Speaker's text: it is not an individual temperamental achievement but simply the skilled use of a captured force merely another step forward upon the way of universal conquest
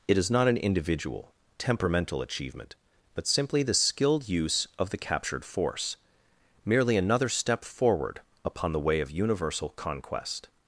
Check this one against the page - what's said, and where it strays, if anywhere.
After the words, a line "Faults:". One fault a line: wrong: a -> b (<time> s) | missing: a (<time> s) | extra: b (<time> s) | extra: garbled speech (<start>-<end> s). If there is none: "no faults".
it is not an individual temperamental achievement but simply the skilled use of the captured force merely another step forward upon the way of universal conquest
Faults:
wrong: a -> the (4.9 s)